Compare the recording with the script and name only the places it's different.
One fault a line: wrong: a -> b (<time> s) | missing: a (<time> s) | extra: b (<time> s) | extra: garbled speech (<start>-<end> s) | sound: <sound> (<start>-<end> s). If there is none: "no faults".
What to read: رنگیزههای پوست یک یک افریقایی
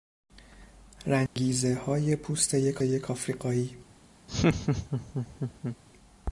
sound: dropout (1.3-1.4 s)
sound: laugh (4.3-5.8 s)